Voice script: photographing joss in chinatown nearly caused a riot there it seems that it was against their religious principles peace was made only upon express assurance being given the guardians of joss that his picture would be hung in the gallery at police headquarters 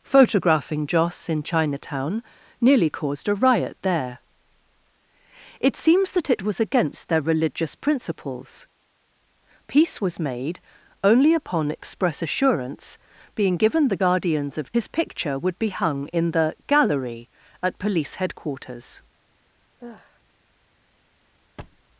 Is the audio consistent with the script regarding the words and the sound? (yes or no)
no